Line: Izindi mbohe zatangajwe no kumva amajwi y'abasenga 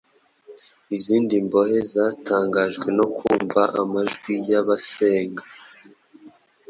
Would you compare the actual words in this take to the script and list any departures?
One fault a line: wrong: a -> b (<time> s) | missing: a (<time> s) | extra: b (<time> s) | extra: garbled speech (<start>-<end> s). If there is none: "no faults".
no faults